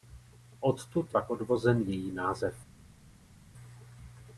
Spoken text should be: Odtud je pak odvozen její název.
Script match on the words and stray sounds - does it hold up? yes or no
no